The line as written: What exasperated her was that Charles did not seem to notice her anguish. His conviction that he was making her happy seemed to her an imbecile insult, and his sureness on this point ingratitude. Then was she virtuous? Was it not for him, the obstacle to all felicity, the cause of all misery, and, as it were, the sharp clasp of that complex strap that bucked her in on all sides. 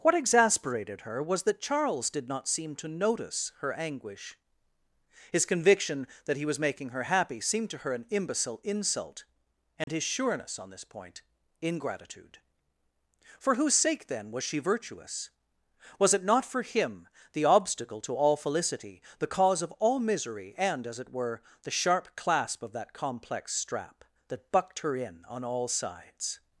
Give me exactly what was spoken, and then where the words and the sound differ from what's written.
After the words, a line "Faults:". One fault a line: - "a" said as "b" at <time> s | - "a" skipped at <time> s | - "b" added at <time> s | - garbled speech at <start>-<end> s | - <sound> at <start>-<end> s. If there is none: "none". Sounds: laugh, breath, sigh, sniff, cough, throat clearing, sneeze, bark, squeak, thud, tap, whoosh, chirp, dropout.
What exasperated her was that Charles did not seem to notice her anguish. His conviction that he was making her happy seemed to her an imbecile insult, and his sureness on this point ingratitude. For whose sake, then was she virtuous? Was it not for him, the obstacle to all felicity, the cause of all misery, and, as it were, the sharp clasp of that complex strap that bucked her in on all sides.
Faults:
- dropout at 9.8-9.9 s
- "For whose sake" added at 13.4 s